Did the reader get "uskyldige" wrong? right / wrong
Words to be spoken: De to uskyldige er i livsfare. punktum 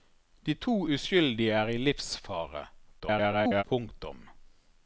right